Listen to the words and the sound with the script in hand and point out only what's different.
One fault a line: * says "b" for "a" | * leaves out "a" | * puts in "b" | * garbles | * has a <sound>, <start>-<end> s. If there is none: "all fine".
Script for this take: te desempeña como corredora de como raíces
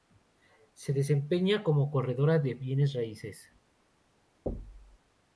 * says "se" for "te"
* says "bienes" for "como"
* has a thud, 4.5-5.0 s